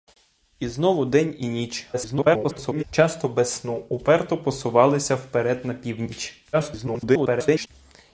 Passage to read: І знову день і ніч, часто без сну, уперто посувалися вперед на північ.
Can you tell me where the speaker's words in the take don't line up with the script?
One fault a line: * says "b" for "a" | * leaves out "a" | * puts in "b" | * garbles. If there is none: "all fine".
* garbles
* garbles